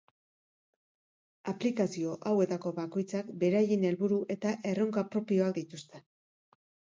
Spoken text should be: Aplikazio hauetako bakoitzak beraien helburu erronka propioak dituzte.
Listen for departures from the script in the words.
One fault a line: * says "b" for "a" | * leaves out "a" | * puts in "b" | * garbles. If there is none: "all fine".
* puts in "eta"